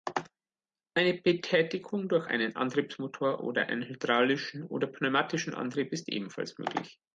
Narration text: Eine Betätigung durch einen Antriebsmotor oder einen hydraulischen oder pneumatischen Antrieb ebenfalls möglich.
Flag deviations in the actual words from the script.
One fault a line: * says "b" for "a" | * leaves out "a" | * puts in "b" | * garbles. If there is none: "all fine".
* puts in "ist"